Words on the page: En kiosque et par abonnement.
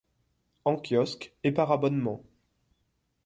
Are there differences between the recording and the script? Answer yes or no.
no